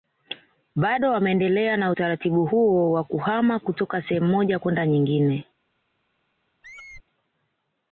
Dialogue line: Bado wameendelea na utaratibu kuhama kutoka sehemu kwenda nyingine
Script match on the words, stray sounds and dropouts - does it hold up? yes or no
no